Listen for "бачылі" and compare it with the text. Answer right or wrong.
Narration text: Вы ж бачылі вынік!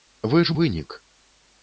wrong